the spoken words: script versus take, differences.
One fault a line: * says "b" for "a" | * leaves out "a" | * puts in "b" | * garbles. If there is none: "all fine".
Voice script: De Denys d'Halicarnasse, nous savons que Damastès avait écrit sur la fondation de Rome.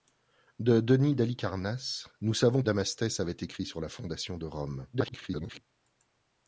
* leaves out "que"
* garbles